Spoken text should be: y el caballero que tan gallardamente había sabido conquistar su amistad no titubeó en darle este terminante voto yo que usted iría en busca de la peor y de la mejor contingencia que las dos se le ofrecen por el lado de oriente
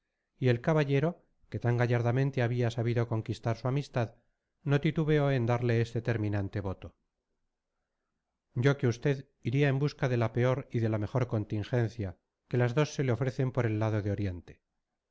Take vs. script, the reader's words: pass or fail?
pass